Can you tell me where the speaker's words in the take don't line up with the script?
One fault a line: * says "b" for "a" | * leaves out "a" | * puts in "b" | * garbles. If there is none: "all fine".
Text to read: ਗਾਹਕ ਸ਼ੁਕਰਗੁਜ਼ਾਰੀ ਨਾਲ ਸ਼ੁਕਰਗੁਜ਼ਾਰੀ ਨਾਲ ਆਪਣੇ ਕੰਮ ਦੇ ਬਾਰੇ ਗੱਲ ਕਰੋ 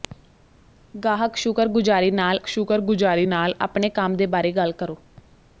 all fine